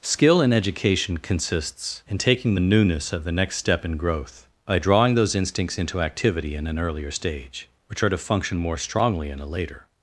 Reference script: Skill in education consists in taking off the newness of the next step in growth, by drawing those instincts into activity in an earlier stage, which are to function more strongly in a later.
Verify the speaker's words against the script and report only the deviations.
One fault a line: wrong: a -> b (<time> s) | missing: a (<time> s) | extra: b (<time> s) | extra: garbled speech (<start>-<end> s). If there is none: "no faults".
missing: off (2.5 s)